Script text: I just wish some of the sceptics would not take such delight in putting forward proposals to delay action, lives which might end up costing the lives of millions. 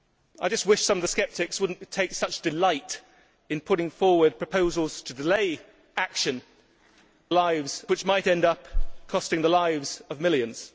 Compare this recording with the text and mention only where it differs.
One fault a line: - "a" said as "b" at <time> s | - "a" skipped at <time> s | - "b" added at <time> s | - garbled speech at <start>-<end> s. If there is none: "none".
none